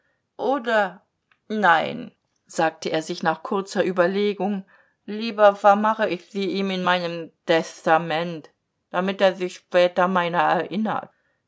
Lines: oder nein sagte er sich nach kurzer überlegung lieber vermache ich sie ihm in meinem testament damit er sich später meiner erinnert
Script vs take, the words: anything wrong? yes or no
no